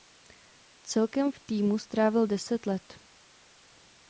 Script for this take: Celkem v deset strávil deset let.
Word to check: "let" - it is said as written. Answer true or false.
true